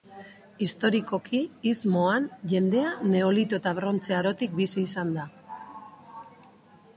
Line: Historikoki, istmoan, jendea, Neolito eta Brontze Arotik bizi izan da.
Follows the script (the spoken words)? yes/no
yes